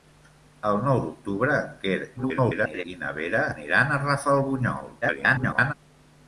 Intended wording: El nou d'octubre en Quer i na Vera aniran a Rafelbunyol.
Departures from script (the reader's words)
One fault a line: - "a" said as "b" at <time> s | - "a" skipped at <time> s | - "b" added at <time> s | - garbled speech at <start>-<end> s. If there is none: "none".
- garbled speech at 2.2-2.8 s
- garbled speech at 5.0-5.7 s